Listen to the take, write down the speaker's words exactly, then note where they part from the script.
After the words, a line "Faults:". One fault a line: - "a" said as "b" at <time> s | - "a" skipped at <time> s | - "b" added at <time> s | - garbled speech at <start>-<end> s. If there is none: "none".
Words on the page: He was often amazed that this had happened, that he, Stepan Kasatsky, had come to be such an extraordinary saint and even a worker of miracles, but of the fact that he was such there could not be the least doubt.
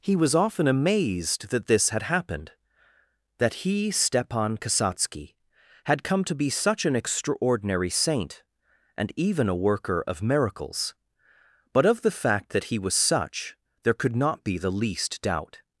He was often amazed that this had happened, that he, Stepan Kasatsky, had come to be such an extraordinary saint and even a worker of miracles, but of the fact that he was such there could not be the least doubt.
Faults:
none